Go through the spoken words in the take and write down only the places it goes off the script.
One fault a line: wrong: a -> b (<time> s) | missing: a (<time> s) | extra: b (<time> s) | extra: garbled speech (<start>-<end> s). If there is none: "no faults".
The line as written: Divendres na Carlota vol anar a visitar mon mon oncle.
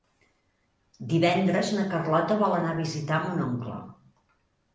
missing: mon (3.4 s)